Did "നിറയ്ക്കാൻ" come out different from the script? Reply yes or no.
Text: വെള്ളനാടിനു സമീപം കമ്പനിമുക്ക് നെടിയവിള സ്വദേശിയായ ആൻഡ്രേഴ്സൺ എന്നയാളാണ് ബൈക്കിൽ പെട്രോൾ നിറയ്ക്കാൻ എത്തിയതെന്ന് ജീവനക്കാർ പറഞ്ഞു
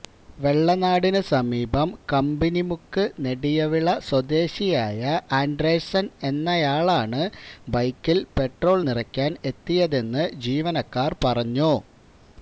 no